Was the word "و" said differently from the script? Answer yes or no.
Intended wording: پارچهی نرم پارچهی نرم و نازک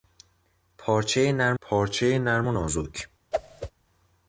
no